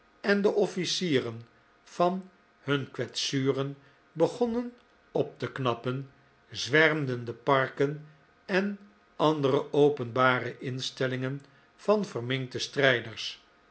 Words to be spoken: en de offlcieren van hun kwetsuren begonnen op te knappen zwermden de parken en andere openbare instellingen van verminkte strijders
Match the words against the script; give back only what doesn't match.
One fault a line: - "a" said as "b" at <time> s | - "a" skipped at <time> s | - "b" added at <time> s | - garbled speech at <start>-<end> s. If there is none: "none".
none